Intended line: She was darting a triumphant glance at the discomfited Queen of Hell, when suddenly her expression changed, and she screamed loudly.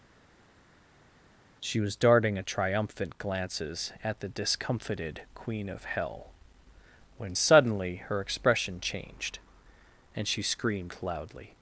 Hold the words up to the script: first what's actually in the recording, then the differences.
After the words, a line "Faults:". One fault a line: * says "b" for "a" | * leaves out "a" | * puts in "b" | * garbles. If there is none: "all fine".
She was darting a triumphant glances at the discomfited Queen of Hell, when suddenly her expression changed, and she screamed loudly.
Faults:
* says "glances" for "glance"